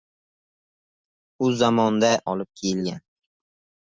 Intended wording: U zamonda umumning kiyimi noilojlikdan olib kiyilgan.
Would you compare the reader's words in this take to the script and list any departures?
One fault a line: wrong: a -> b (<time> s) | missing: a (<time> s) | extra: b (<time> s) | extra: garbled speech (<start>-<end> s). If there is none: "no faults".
missing: umumning kiyimi noilojlikdan (2.1 s)